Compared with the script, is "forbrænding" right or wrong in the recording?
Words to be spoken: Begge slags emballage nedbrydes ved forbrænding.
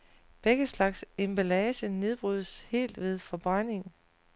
right